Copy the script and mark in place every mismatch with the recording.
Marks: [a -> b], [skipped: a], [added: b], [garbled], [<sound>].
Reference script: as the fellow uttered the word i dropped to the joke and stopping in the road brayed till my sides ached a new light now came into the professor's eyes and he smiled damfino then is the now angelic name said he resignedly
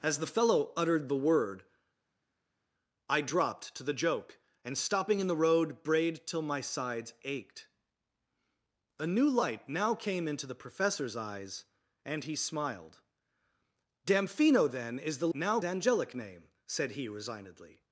as the fellow uttered the word i dropped to the joke and stopping in the road brayed till my sides ached a new light now came into the professor's eyes and he smiled damfino then is the now angelic name said he resignedly